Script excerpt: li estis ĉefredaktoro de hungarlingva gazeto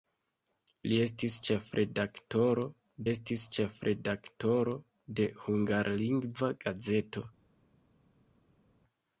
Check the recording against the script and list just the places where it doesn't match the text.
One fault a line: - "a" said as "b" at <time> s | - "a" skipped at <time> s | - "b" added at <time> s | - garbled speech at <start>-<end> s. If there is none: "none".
- "estis ĉefredaktoro" added at 3.1 s